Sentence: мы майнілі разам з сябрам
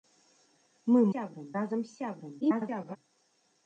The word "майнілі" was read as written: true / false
false